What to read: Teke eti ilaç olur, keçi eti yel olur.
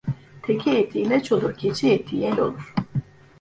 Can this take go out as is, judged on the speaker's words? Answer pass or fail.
pass